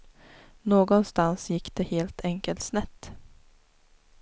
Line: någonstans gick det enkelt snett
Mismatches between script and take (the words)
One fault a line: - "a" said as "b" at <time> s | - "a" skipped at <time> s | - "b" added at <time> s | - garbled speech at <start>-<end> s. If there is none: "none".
- "helt" added at 1.8 s